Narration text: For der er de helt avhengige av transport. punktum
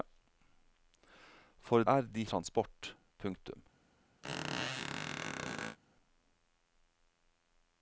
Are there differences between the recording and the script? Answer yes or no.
yes